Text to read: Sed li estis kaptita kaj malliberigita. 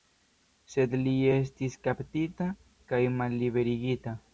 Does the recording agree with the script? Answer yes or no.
yes